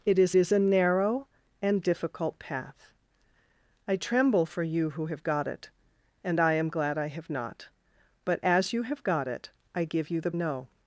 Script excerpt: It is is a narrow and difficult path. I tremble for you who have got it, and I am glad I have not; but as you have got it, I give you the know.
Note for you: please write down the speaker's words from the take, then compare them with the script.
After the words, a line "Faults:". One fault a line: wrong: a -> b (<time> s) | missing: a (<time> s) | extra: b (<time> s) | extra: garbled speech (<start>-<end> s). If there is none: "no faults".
It is is a narrow and difficult path. I tremble for you who have got it, and I am glad I have not; but as you have got it, I give you the know.
Faults:
no faults